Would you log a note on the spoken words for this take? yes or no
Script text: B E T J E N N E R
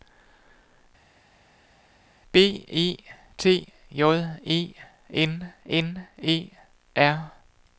no